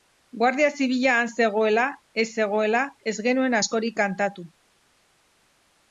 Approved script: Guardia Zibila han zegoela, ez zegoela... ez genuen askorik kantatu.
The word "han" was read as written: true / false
true